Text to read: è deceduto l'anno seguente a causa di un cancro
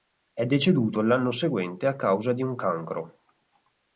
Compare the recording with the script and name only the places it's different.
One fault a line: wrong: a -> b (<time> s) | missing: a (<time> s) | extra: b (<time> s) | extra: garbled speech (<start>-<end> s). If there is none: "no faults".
no faults